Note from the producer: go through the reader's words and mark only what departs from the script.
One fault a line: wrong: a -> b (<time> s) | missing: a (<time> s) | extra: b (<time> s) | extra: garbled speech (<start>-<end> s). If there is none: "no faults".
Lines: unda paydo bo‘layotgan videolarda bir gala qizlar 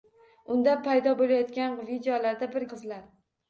missing: gala (2.7 s)